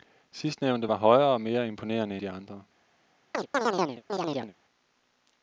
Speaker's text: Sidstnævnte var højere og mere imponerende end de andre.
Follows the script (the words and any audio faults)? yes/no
no